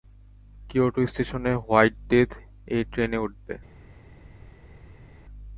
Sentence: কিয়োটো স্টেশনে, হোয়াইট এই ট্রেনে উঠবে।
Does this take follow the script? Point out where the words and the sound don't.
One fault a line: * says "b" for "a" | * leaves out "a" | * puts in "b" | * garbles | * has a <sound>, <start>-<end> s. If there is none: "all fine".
* puts in "ডেথ"